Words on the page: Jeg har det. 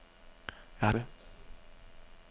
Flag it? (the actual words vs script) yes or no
no